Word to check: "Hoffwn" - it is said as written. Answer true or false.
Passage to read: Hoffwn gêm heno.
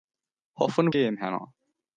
true